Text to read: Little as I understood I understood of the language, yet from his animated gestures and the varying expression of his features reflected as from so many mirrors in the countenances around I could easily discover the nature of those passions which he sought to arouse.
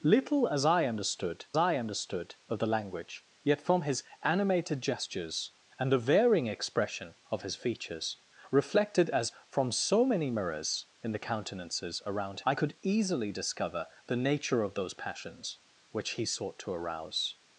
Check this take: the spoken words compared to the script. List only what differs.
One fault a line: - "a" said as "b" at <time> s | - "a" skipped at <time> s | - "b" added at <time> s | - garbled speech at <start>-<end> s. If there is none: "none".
none